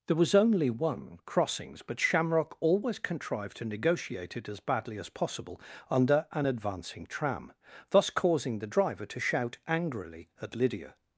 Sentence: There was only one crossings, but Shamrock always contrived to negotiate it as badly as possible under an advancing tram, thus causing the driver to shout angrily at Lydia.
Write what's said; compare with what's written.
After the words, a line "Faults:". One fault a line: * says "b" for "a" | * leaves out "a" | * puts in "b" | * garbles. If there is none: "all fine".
There was only one crossings, but Shamrock always contrived to negotiate it as badly as possible under an advancing tram, thus causing the driver to shout angrily at Lydia.
Faults:
all fine